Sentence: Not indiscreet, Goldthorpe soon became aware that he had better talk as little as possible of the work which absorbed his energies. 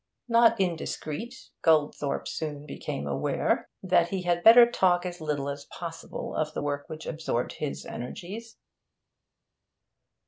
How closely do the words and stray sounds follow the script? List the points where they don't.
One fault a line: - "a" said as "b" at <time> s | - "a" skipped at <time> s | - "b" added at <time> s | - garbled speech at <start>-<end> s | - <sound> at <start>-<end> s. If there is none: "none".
none